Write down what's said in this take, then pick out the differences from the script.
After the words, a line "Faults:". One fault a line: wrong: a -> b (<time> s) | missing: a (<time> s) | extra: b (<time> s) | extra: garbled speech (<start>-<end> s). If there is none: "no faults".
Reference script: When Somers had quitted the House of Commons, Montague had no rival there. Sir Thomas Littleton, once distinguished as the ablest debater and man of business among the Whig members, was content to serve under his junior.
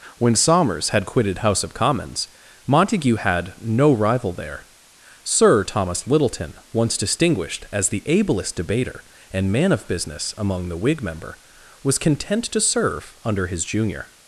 When Somers had quitted House of Commons, Montague had no rival there. Sir Thomas Littleton, once distinguished as the ablest debater and man of business among the Whig member, was content to serve under his junior.
Faults:
missing: the (1.4 s)
wrong: members -> member (11.0 s)